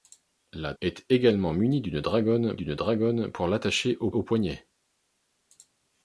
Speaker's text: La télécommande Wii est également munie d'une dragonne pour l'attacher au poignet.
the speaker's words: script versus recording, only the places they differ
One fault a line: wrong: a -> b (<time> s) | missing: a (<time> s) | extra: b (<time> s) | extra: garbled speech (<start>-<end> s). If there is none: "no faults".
missing: télécommande Wii (0.7 s)
extra: d'une dragonne (2.5 s)
extra: au (4.1 s)